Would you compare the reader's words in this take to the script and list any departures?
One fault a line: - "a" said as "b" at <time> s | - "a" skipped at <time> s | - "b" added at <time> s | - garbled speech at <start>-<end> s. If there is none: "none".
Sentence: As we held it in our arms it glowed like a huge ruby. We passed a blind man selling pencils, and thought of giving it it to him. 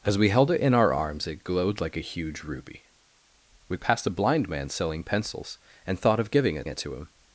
none